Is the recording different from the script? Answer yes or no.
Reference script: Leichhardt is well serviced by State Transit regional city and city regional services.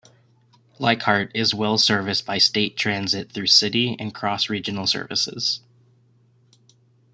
yes